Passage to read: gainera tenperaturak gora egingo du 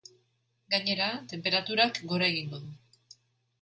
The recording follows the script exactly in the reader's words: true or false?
true